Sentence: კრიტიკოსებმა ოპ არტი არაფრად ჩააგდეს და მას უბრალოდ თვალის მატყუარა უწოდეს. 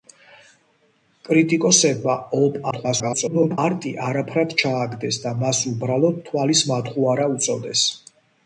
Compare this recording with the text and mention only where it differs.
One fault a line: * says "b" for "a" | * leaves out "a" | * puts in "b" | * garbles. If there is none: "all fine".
* garbles